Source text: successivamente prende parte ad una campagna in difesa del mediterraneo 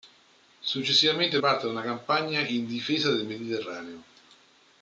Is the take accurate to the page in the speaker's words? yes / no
no